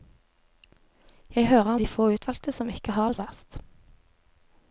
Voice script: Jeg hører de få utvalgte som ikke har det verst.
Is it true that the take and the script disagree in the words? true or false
false